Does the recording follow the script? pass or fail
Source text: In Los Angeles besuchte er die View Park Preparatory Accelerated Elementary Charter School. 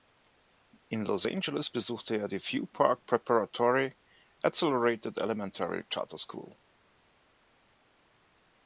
pass